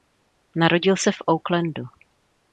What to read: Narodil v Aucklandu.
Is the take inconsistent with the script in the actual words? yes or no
yes